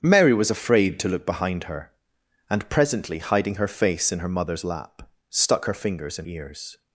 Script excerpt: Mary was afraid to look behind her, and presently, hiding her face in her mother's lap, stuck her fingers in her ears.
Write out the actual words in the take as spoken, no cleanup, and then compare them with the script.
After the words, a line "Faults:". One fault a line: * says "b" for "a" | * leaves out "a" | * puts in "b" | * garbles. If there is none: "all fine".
Mary was afraid to look behind her, and presently, hiding her face in her mother's lap, stuck her fingers in ears.
Faults:
* leaves out "her"